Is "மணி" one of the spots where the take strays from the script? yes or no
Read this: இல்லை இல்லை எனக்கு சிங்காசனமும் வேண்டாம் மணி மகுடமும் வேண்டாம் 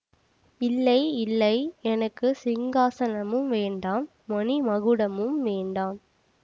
no